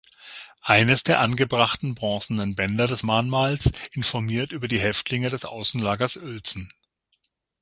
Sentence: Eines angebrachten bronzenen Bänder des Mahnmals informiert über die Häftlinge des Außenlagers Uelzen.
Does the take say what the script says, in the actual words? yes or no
no